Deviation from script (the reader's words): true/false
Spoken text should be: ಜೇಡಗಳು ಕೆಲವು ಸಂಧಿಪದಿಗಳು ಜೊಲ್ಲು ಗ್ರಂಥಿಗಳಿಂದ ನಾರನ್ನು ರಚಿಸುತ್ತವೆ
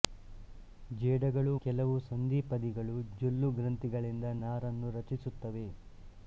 false